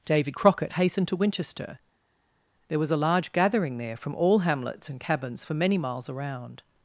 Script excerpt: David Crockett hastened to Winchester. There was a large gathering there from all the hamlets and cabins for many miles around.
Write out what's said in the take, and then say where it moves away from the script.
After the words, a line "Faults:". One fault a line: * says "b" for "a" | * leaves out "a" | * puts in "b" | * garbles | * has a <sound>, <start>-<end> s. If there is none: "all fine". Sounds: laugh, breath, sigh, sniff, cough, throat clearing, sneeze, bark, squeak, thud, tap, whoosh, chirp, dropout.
David Crockett hastened to Winchester. There was a large gathering there from all hamlets and cabins for many miles around.
Faults:
* leaves out "the"